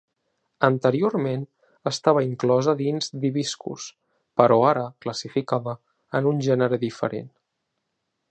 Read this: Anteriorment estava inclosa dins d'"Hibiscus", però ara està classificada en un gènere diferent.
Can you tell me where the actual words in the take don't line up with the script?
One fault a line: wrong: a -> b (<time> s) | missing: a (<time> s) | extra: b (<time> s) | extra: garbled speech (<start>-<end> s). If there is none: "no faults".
missing: està (4.9 s)